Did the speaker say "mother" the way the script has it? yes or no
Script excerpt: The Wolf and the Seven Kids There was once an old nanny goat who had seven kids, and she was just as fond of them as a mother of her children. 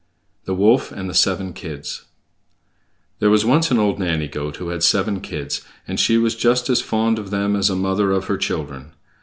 yes